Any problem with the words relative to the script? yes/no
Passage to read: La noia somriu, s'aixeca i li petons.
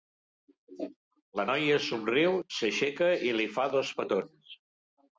yes